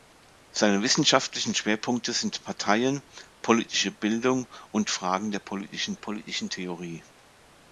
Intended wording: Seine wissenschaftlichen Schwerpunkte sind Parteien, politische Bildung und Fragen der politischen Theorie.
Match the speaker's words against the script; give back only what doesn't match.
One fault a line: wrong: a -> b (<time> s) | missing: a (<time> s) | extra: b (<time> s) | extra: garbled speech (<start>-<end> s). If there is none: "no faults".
extra: politischen (5.9 s)